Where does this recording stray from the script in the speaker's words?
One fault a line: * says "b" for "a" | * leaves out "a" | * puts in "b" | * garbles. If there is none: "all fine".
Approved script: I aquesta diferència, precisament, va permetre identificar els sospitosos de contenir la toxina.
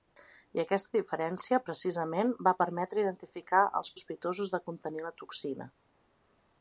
all fine